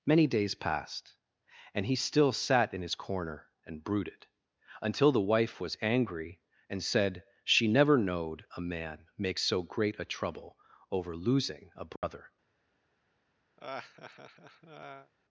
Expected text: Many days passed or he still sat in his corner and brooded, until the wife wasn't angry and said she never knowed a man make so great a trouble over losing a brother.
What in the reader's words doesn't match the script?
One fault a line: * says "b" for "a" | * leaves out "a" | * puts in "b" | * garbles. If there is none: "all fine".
* says "and" for "or"
* says "was" for "wasn't"